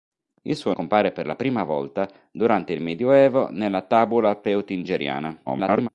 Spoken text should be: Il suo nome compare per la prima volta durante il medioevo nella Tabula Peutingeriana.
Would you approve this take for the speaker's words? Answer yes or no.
no